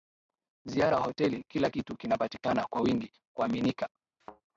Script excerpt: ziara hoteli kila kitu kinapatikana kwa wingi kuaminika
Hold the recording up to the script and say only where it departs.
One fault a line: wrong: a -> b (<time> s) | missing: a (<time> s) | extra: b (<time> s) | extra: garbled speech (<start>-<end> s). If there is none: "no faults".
no faults